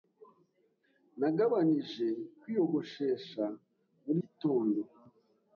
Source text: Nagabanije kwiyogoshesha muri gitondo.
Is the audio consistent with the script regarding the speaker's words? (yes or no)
yes